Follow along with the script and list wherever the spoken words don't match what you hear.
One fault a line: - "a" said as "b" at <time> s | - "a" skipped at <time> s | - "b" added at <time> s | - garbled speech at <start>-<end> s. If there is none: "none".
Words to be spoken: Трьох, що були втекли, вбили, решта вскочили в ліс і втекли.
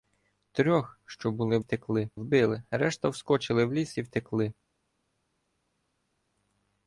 none